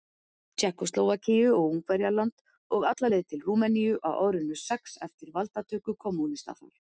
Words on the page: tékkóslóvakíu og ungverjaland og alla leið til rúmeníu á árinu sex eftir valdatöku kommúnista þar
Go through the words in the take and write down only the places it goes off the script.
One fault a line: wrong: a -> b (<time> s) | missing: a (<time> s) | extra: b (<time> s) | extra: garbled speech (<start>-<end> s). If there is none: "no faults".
no faults